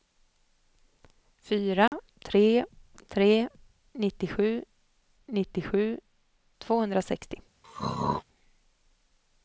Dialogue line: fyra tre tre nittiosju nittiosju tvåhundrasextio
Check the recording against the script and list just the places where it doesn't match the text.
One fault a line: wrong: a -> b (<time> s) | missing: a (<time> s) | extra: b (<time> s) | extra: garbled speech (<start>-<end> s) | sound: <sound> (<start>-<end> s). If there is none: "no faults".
sound: dropout (1.9-1.9 s)
sound: throat clearing (7.6-8.2 s)